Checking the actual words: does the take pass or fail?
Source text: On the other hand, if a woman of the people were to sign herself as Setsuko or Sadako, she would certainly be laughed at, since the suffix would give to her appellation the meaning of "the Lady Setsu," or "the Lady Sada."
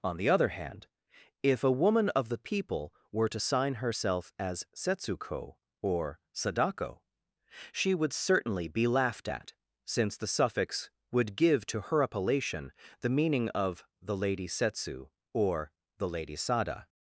pass